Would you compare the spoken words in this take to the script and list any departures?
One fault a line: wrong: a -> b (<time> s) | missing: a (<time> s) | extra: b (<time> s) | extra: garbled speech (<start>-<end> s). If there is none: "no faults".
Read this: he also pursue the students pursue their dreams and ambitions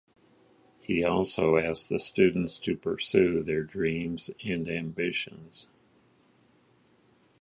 wrong: pursue -> asked (1.5 s)
extra: to (2.6 s)